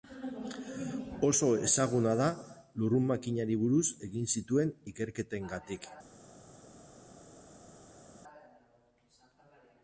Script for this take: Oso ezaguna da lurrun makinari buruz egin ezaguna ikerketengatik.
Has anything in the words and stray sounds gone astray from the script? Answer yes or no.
yes